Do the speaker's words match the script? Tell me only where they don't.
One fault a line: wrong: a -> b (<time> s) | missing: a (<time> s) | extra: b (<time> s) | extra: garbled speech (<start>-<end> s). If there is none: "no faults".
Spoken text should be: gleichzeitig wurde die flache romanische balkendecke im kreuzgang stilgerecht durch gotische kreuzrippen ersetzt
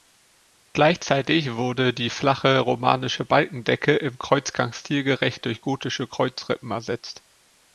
no faults